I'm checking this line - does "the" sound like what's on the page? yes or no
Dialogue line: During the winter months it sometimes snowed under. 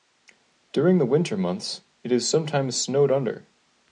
yes